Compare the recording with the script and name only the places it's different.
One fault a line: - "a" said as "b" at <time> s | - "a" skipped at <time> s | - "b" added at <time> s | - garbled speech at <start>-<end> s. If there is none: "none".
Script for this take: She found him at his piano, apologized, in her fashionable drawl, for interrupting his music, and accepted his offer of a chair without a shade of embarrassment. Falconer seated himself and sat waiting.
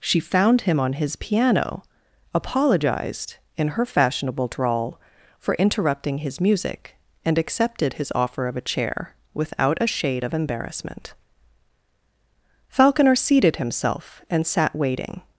- "at" said as "on" at 0.8 s